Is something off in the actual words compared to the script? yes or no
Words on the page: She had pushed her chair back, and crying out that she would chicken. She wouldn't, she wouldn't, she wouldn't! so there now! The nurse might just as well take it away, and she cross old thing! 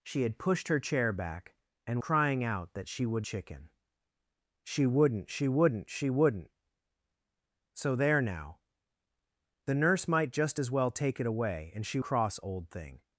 no